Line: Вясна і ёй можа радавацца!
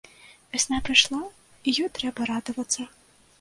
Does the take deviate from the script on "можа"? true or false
true